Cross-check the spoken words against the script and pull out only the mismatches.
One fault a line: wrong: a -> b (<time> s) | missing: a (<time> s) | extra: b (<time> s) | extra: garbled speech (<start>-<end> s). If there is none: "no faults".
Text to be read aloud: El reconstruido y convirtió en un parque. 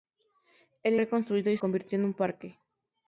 no faults